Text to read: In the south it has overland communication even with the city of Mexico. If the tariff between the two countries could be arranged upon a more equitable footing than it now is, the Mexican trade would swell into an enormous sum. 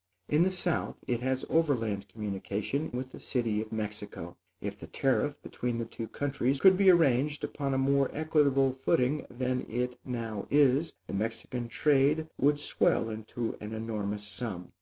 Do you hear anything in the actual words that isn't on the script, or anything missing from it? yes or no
yes